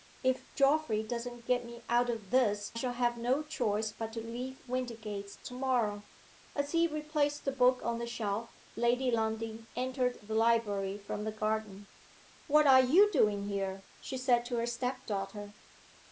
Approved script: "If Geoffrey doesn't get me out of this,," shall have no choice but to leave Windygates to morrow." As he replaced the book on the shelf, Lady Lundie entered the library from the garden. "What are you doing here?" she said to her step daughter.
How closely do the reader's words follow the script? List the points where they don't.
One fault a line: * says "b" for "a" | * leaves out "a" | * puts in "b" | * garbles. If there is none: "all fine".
all fine